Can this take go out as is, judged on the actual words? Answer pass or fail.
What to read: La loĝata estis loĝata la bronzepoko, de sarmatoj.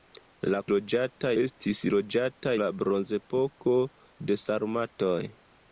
pass